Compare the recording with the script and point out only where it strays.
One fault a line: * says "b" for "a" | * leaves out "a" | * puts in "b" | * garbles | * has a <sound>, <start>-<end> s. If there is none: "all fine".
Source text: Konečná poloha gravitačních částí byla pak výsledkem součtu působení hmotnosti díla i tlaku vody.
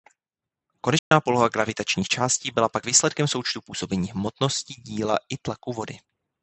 * has a dropout, 1.0-1.1 s